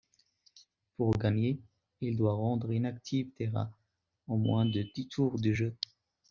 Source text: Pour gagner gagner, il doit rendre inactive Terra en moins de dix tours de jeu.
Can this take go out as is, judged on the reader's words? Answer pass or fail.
fail